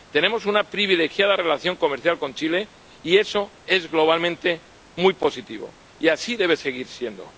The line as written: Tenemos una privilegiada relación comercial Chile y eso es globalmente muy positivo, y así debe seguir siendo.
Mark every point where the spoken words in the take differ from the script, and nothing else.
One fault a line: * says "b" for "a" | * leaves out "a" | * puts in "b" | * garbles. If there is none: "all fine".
* puts in "con"